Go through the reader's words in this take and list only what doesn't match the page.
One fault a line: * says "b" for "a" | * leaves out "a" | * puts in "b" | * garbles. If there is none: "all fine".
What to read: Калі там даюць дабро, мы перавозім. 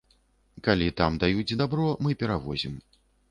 all fine